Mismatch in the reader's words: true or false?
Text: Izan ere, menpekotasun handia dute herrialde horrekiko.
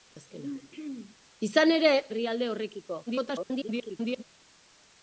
true